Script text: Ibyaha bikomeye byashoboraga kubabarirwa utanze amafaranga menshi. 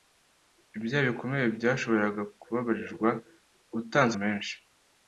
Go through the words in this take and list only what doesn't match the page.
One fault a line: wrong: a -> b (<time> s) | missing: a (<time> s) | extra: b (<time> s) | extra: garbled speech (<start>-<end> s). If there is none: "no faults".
missing: amafaranga (4.1 s)